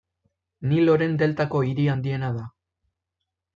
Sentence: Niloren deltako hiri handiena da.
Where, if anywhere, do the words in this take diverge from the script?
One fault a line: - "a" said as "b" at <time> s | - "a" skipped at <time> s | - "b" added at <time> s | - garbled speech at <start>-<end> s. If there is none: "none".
none